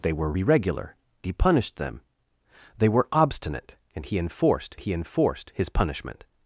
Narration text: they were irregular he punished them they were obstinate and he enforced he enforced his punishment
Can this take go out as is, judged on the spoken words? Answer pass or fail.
pass